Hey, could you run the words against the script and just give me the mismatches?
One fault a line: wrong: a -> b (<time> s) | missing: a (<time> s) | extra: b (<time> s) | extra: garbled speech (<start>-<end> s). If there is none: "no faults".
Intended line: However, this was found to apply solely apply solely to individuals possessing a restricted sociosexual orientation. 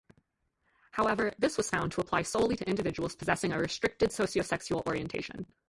missing: apply solely (2.5 s)